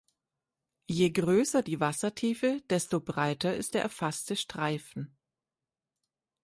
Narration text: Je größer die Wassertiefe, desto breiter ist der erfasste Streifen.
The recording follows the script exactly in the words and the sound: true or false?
true